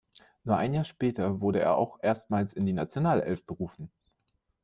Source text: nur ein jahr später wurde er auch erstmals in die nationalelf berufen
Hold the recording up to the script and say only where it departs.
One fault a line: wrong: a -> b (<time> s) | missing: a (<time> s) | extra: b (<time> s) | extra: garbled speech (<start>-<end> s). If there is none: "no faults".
no faults